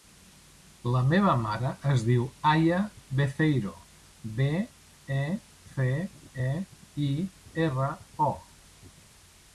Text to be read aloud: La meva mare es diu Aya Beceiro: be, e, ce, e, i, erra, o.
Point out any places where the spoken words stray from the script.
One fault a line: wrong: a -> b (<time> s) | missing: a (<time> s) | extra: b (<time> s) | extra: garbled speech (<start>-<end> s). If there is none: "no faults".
no faults